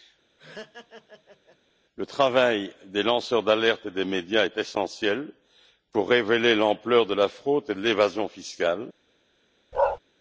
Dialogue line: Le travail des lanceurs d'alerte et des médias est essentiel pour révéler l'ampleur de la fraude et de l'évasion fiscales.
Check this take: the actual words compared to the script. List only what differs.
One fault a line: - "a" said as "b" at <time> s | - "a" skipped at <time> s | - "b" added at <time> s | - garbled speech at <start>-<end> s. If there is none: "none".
none